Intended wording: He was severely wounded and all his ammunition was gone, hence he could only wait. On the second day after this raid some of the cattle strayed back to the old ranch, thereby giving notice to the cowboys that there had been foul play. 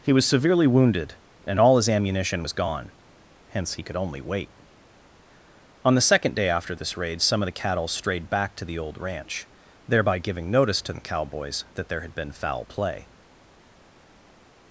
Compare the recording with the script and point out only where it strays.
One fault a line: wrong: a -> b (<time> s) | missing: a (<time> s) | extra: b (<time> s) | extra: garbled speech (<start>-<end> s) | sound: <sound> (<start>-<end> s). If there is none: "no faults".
no faults